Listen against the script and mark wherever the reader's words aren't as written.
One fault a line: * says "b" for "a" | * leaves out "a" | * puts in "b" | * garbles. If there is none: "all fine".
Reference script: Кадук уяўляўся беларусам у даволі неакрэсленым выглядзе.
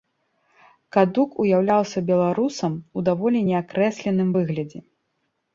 all fine